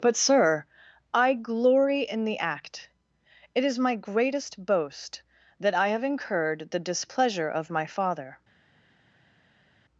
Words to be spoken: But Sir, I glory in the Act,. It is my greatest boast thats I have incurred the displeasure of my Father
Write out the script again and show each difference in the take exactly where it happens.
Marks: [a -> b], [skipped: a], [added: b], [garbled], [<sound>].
But Sir, I glory in the Act,. It is my greatest boast [thats -> that] I have incurred the displeasure of my Father